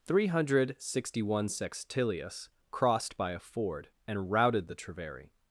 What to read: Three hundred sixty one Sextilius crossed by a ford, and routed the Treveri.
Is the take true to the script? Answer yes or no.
yes